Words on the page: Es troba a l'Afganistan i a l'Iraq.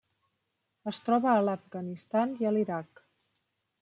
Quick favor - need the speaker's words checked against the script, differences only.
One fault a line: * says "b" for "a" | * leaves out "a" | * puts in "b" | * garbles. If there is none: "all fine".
all fine